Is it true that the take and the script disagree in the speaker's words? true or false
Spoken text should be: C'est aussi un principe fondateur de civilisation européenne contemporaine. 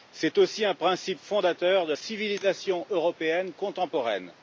false